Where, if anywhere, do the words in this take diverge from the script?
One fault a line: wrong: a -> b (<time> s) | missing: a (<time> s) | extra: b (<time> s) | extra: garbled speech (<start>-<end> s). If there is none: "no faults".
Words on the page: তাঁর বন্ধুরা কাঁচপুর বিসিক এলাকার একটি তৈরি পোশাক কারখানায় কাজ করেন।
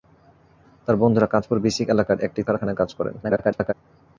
missing: তৈরি পোশাক (2.4 s)
extra: garbled speech (3.2-3.7 s)